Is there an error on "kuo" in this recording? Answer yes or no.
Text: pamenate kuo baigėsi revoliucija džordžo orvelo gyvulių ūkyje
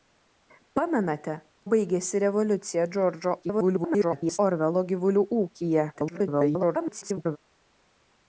yes